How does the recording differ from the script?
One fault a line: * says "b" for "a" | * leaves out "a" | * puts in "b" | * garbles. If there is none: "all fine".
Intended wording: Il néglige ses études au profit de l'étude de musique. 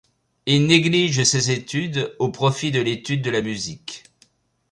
* puts in "la"